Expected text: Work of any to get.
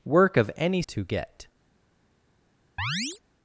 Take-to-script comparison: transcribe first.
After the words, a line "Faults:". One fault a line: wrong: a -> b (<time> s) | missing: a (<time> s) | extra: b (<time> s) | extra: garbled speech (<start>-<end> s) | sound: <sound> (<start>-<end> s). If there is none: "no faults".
Work of any to get.
Faults:
sound: chirp (2.8-3.2 s)